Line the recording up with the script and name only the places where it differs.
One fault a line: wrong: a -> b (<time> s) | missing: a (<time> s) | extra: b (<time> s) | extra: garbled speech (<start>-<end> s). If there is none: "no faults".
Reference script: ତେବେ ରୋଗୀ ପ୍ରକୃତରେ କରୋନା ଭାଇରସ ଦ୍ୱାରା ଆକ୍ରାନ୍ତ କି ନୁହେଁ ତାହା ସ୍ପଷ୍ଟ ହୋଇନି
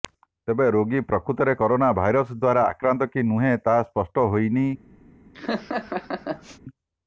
no faults